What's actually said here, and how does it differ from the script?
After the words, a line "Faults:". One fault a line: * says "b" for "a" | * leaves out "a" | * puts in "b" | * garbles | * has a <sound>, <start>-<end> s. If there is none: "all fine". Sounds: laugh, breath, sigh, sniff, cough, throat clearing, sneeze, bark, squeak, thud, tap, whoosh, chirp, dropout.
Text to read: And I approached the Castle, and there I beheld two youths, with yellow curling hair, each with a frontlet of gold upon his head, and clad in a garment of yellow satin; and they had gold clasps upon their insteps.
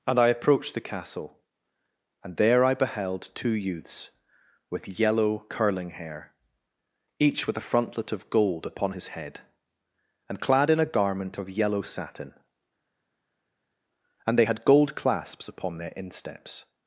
And I approached the Castle, and there I beheld two youths, with yellow curling hair, each with a frontlet of gold upon his head, and clad in a garment of yellow satin; and they had gold clasps upon their insteps.
Faults:
all fine